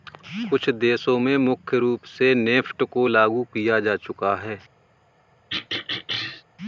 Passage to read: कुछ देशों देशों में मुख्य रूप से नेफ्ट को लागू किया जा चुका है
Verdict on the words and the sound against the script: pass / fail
fail